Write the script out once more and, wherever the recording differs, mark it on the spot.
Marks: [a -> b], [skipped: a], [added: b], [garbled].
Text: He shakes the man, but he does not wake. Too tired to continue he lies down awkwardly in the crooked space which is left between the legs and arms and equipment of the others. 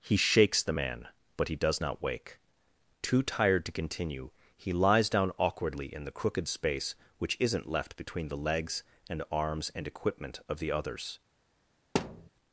He shakes the man, but he does not wake. Too tired to continue he lies down awkwardly in the crooked space which [is -> isn't] left between the legs and arms and equipment of the others.